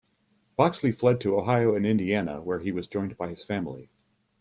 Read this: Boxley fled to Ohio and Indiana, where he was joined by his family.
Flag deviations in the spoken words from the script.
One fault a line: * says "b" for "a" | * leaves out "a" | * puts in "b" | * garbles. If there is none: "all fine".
all fine